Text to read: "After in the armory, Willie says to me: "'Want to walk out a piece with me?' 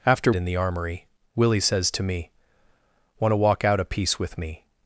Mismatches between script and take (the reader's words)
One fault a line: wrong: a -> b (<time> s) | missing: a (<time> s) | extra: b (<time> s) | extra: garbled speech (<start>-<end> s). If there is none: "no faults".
no faults